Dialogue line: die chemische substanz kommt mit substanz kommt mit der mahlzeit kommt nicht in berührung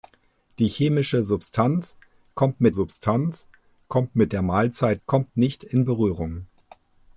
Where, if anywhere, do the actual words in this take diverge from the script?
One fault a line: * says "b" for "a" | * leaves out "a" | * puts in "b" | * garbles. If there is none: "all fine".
all fine